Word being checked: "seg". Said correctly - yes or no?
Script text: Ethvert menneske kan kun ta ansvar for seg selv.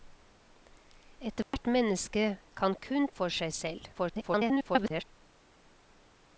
yes